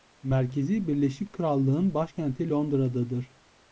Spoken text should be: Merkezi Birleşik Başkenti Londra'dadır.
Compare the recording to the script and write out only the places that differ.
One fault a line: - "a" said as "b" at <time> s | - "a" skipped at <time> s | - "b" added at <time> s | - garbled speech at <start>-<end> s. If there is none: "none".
- "Krallık'ın" added at 1.3 s